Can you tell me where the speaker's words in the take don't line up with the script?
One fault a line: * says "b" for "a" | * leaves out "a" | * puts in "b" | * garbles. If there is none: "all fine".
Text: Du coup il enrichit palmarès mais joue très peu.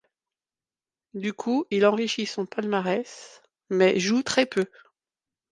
* puts in "son"